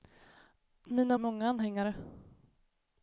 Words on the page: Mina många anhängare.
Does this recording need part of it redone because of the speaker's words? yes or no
no